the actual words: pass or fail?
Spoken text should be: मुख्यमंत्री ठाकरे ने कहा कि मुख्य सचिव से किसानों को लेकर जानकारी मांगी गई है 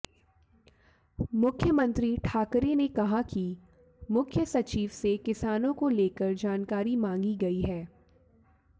pass